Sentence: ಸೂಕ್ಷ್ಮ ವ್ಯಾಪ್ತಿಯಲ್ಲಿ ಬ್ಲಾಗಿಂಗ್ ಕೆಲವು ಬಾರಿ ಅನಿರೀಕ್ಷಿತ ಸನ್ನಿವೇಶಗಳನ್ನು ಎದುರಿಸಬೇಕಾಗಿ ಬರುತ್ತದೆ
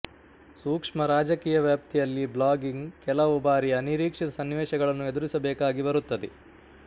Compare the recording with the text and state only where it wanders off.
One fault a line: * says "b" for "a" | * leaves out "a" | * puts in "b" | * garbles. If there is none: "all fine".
* puts in "ರಾಜಕೀಯ"